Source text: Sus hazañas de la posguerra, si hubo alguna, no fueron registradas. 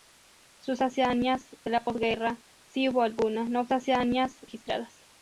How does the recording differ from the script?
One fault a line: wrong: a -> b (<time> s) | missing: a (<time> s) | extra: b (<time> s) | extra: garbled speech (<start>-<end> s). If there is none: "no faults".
wrong: fueron -> hazañas (3.7 s)